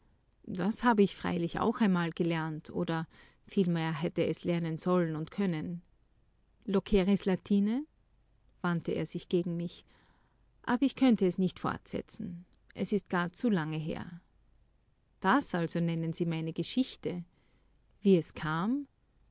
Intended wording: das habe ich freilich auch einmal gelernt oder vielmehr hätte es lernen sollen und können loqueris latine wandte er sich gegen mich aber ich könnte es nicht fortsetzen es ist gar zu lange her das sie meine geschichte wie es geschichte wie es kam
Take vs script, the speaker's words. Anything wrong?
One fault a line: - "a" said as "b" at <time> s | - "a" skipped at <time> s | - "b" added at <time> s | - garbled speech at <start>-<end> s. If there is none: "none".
- "also nennen" added at 15.5 s
- "geschichte wie es" skipped at 18.3 s